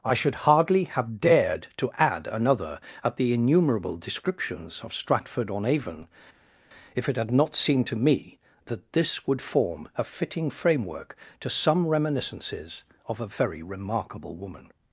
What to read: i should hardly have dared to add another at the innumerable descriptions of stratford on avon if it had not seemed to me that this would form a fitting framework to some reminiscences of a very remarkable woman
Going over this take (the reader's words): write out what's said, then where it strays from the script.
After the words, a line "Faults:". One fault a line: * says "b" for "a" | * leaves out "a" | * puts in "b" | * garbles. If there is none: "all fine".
i should hardly have dared to add another at the innumerable descriptions of stratford on avon if it had not seemed to me that this would form a fitting framework to some reminiscences of a very remarkable woman
Faults:
all fine